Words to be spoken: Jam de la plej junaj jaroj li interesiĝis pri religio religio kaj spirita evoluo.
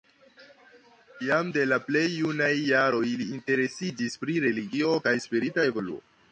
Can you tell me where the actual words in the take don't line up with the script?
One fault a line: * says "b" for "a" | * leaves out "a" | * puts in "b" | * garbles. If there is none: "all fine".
* leaves out "religio"